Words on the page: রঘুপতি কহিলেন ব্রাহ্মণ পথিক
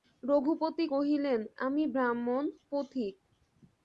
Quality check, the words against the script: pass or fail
fail